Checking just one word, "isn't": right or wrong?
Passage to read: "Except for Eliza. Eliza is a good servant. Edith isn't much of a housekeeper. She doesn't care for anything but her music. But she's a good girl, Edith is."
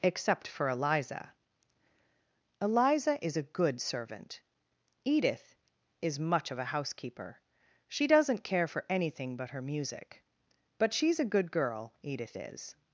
wrong